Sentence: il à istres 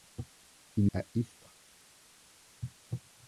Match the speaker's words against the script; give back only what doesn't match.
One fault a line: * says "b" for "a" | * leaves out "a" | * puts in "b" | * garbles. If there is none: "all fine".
all fine